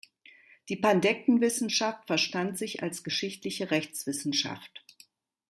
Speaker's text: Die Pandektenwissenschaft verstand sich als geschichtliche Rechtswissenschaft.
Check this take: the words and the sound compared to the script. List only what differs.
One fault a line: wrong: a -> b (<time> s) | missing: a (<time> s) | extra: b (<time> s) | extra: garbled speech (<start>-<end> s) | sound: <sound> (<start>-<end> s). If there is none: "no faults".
no faults